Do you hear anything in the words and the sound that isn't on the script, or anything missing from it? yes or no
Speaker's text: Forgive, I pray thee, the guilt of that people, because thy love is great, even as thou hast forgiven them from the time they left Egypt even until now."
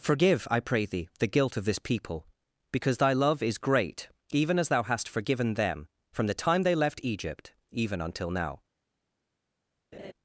yes